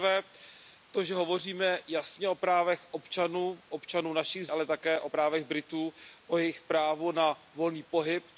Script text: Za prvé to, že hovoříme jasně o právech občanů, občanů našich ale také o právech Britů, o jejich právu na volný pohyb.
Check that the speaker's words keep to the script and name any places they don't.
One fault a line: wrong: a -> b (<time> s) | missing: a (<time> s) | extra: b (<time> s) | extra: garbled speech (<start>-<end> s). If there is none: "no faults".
no faults